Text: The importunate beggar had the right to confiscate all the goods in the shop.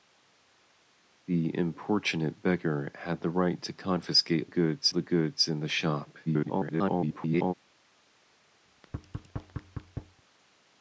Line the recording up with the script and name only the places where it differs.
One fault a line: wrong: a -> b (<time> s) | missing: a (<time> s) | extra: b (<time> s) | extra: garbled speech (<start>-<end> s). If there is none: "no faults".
wrong: all -> goods (4.5 s)
extra: garbled speech (6.3-7.5 s)